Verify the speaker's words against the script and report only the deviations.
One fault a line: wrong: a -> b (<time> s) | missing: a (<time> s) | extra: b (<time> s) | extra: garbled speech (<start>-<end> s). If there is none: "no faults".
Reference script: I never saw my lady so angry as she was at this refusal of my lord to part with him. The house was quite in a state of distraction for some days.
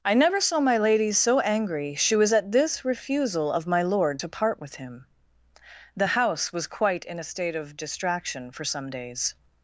missing: as (1.9 s)